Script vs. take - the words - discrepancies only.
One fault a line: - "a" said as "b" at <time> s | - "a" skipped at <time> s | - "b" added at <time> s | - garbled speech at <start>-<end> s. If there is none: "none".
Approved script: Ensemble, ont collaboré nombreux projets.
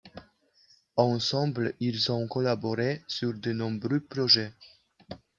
- "ils" added at 1.8 s
- "sur de" added at 3.1 s